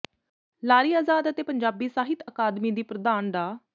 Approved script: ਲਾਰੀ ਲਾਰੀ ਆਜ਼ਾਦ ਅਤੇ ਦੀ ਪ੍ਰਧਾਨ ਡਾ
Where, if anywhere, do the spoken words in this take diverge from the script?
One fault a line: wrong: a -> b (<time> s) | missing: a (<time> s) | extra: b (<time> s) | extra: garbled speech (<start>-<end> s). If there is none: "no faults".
missing: ਲਾਰੀ (0.9 s)
extra: ਪੰਜਾਬੀ ਸਾਹਿਤ ਅਕਾਦਮੀ (1.4 s)